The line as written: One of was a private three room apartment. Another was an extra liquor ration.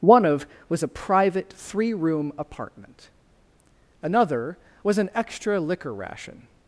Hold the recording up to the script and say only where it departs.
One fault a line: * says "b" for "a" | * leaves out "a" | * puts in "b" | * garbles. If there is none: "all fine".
all fine